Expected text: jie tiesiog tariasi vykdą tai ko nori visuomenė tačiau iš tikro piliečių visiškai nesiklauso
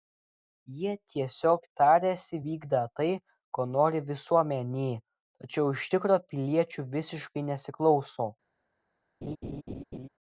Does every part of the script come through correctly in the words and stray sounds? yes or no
no